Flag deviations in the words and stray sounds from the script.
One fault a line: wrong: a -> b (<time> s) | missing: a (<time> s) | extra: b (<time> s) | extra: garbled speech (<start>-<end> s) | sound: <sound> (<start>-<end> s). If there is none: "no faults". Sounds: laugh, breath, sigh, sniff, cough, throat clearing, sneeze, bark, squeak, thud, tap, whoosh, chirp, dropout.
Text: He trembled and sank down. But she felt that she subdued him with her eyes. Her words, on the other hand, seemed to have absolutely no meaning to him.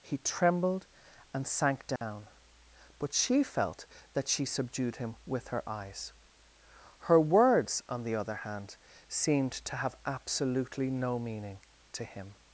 sound: dropout (2.0-2.0 s)